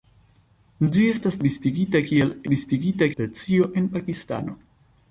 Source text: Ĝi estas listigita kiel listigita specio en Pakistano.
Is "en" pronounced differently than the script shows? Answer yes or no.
no